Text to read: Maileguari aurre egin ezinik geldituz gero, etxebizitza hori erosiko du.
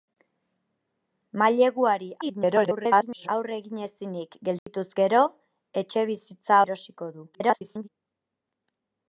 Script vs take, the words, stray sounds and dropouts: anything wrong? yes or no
yes